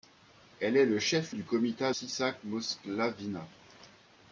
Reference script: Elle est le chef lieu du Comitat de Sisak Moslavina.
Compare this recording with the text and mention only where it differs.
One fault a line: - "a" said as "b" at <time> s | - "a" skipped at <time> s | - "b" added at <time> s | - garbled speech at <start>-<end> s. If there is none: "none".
- "lieu" skipped at 1.4 s
- "de" skipped at 1.9 s